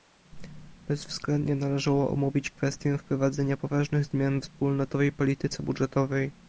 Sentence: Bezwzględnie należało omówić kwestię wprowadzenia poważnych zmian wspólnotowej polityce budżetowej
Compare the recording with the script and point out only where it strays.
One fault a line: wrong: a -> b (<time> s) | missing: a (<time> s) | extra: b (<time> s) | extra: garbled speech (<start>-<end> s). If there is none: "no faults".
no faults